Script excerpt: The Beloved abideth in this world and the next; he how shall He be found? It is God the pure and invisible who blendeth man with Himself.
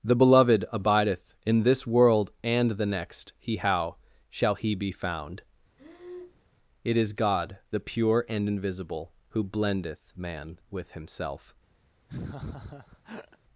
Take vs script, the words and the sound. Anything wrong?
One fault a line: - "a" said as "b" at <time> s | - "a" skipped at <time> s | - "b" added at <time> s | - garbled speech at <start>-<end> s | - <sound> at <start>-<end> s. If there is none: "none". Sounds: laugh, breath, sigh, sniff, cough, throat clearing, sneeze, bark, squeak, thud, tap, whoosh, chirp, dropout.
- breath at 5.8-6.4 s
- laugh at 12.1-13.4 s